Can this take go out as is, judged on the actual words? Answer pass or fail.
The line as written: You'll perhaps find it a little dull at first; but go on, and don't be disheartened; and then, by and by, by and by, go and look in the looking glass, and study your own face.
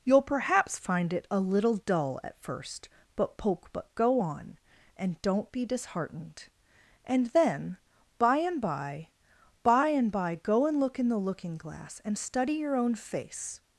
fail